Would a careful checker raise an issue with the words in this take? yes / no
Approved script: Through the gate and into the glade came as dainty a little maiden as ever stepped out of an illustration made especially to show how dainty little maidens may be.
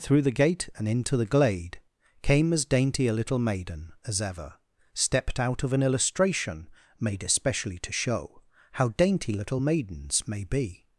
no